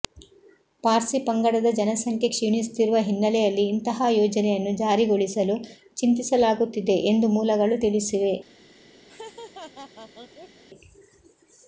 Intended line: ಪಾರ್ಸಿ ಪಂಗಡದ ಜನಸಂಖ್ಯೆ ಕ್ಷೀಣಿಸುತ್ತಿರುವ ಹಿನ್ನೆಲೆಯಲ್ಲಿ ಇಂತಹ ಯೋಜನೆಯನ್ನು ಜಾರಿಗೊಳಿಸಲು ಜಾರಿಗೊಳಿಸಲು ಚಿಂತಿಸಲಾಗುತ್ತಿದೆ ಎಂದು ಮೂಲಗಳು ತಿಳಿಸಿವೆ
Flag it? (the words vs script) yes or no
yes